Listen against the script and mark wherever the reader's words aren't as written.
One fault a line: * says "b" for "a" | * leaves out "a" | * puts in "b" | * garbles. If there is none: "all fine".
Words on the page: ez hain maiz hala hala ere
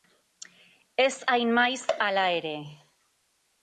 * leaves out "hala"